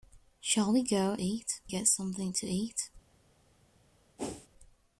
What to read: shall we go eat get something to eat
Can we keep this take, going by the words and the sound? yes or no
no